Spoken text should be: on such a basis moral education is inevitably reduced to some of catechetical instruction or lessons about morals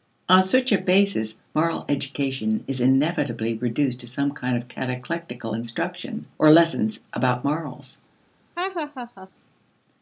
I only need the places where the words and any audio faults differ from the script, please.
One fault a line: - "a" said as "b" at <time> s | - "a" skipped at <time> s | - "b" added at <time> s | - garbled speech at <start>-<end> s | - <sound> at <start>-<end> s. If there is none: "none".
- "kind" added at 4.3 s
- laugh at 8.6-9.3 s